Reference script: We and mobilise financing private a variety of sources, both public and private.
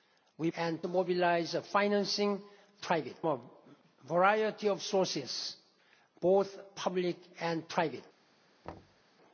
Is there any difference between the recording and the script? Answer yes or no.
no